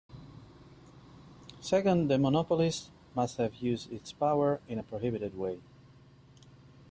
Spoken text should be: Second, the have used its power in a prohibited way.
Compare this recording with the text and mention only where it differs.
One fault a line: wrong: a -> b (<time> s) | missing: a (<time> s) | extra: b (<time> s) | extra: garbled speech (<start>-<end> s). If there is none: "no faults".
extra: monopolist must (2.2 s)